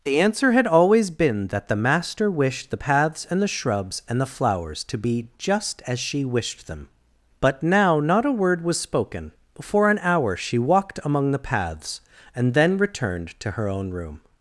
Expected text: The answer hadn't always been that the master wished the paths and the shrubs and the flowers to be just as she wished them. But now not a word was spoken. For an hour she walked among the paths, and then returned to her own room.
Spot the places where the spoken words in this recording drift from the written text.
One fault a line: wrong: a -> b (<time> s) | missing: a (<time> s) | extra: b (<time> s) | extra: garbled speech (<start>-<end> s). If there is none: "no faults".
wrong: hadn't -> had (0.5 s)